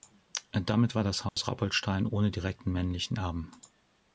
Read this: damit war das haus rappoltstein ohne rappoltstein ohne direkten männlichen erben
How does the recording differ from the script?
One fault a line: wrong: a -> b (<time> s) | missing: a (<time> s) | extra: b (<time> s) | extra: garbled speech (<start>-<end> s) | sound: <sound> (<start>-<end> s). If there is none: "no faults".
sound: dropout (1.3-1.4 s)
missing: rappoltstein ohne (2.3 s)